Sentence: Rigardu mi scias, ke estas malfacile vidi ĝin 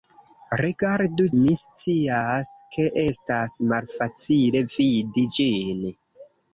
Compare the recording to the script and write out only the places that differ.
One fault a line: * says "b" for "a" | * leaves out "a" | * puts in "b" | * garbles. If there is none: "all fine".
all fine